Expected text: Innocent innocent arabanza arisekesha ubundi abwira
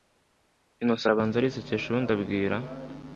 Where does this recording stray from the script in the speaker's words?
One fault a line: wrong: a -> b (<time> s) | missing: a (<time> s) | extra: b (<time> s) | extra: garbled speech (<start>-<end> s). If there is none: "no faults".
missing: innocent (1.1 s)